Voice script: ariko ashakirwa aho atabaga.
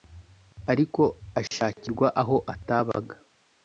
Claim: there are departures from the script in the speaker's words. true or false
false